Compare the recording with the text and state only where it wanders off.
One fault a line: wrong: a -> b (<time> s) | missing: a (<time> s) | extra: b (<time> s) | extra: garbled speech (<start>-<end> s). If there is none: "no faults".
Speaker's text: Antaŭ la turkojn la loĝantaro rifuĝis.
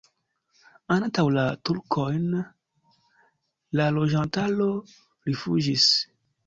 no faults